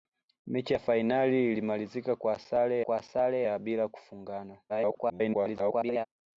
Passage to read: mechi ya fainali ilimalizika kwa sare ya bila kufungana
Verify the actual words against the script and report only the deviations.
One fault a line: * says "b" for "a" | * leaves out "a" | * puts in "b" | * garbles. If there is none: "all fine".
* puts in "kwa sare"
* garbles